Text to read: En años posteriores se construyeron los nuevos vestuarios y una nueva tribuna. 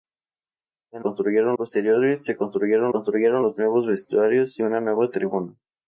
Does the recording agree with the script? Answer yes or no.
no